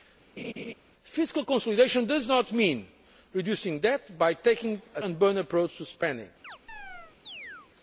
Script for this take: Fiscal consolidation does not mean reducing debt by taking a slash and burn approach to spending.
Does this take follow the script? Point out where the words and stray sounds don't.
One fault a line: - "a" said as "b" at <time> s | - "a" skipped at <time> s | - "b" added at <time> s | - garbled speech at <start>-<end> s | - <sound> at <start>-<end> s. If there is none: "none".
- laugh at 0.4-0.7 s
- "slash" skipped at 5.0 s
- chirp at 6.4-7.7 s